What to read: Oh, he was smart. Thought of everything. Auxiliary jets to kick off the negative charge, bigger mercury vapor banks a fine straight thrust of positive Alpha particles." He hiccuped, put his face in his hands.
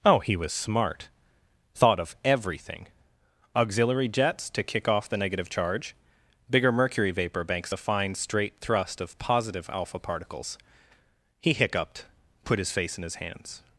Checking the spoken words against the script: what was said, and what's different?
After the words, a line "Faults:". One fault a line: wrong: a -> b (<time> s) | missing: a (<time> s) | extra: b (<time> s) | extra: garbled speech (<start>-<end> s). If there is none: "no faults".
Oh, he was smart. Thought of everything. Auxiliary jets to kick off the negative charge, bigger mercury vapor banks a fine straight thrust of positive Alpha particles." He hiccuped, put his face in his hands.
Faults:
no faults